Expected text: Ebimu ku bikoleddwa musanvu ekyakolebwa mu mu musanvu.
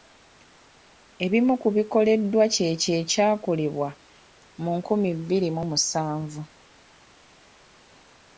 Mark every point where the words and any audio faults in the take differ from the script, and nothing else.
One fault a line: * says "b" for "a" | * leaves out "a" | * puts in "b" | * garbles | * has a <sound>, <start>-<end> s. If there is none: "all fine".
* says "kyekyo" for "musanvu"
* puts in "nkumi bbiri"